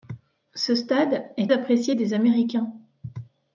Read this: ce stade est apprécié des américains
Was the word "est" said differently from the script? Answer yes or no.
no